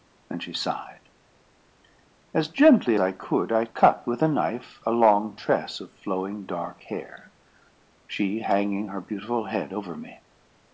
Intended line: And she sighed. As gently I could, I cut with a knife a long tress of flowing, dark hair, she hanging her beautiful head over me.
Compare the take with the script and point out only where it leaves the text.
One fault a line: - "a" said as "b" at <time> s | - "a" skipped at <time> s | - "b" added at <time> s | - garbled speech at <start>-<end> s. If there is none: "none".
none